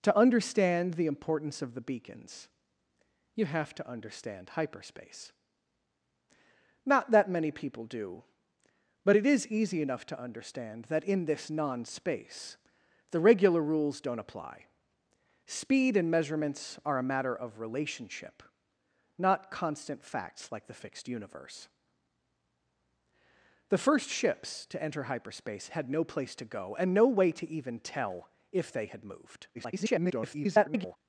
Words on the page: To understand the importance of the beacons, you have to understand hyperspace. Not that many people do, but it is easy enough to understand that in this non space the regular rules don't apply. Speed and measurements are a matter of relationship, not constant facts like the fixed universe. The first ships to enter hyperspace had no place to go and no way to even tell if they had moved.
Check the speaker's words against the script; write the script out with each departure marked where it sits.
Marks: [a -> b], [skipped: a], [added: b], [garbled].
To understand the importance of the beacons, you have to understand hyperspace. Not that many people do, but it is easy enough to understand that in this non space the regular rules don't apply. Speed and measurements are a matter of relationship, not constant facts like the fixed universe. The first ships to enter hyperspace had no place to go and no way to even tell if they had moved. [garbled]